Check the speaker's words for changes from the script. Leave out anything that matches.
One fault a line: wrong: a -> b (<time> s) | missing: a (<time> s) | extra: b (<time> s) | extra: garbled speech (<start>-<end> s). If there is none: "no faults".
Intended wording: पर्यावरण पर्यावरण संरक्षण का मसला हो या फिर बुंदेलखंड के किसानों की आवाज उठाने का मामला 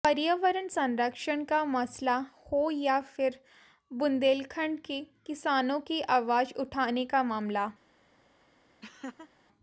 missing: पर्यावरण (0.7 s)